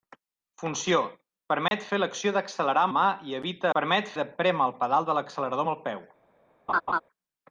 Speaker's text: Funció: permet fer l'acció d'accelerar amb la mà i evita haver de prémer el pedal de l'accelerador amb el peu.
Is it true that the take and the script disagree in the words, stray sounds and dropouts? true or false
true